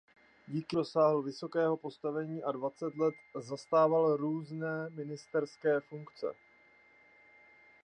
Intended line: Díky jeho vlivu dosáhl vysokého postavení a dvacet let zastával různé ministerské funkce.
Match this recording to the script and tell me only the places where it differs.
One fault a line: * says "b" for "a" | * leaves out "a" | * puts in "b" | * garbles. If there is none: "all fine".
* leaves out "jeho vlivu"